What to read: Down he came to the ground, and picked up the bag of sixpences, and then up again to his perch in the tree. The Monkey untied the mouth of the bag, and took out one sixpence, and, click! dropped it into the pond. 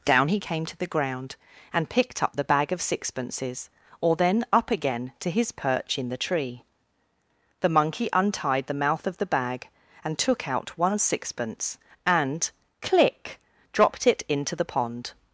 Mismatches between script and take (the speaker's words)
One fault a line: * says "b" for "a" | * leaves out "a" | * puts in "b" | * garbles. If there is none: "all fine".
* says "or" for "and"